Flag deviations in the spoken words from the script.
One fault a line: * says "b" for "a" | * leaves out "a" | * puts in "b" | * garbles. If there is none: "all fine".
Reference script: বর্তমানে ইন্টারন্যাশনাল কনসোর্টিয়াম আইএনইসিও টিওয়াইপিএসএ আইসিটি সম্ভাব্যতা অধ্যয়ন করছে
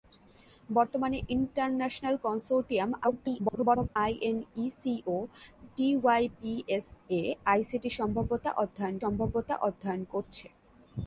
* garbles
* puts in "সম্ভাব্যতা অধ্যয়ন"